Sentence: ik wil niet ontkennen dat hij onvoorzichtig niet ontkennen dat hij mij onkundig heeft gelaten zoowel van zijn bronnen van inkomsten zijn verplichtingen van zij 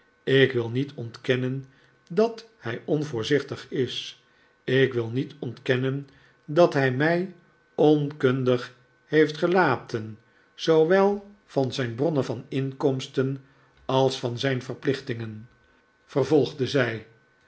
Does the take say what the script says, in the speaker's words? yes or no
no